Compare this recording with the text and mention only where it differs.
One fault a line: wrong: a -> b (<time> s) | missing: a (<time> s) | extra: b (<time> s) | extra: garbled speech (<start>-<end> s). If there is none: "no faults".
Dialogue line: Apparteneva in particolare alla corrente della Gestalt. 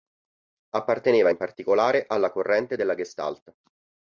no faults